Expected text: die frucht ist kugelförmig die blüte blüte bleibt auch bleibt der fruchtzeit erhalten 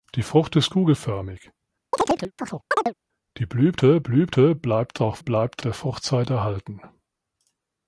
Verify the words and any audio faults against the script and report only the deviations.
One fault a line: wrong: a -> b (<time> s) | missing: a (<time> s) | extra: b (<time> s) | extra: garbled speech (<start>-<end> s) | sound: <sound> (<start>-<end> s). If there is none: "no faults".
sound: chirp (1.9-2.9 s)